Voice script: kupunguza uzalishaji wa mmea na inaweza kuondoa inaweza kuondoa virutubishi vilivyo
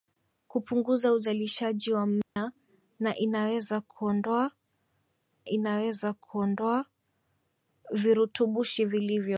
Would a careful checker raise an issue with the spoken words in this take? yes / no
no